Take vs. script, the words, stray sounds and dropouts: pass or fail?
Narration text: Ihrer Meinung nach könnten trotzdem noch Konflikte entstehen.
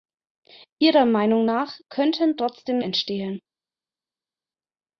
fail